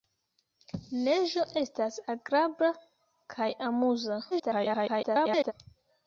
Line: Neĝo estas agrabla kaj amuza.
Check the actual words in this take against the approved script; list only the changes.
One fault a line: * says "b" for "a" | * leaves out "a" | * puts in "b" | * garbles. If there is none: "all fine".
* garbles